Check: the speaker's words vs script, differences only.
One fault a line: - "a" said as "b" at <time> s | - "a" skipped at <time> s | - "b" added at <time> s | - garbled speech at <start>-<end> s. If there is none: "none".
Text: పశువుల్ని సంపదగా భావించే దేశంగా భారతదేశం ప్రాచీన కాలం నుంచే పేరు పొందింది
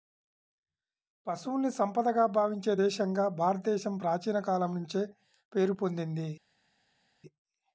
none